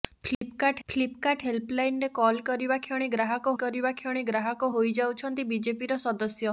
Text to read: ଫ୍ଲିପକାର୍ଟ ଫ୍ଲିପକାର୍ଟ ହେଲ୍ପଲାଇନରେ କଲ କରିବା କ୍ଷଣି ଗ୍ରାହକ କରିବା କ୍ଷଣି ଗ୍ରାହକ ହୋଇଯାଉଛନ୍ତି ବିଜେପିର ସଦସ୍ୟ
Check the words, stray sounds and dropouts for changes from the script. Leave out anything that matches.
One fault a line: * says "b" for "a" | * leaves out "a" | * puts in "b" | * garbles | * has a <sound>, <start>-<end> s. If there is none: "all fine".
* has a dropout, 0.3-0.4 s